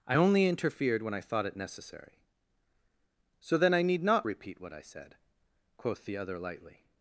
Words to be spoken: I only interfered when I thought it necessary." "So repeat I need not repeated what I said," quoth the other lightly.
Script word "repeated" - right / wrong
wrong